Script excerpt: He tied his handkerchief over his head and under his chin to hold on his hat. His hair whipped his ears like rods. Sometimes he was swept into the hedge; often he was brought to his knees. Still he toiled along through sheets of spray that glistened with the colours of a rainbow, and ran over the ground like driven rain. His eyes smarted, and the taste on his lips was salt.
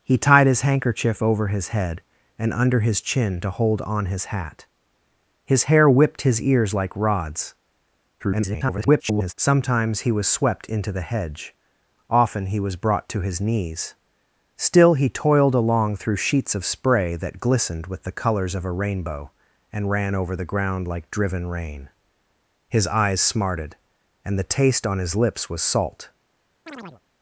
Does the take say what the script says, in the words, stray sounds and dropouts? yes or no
no